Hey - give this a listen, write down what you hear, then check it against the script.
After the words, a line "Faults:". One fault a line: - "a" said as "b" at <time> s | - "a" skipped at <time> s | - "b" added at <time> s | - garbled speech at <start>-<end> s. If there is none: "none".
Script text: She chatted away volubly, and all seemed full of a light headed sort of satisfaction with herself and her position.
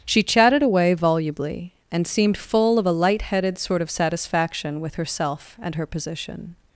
She chatted away volubly, and seemed full of a light headed sort of satisfaction with herself and her position.
Faults:
- "all" skipped at 2.1 s